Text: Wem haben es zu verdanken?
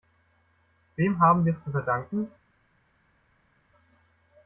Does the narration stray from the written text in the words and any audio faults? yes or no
yes